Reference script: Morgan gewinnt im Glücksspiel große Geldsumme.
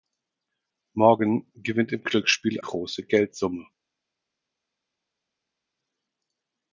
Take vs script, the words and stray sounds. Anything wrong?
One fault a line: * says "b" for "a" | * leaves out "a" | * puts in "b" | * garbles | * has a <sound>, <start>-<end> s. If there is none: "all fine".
all fine